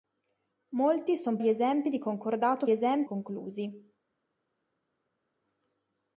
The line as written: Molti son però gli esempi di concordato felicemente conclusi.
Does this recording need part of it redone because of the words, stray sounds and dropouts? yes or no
yes